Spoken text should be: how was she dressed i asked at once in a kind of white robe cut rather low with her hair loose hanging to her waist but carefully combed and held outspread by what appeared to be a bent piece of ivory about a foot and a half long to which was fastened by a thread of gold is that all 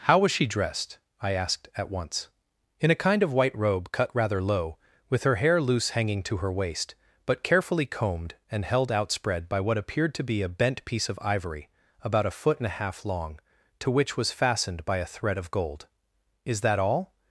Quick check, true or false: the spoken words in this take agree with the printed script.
true